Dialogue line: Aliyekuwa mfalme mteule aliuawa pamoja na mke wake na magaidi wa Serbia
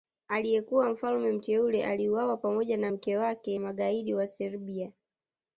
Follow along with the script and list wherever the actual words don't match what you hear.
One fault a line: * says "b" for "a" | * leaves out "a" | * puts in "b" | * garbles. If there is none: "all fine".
* leaves out "na"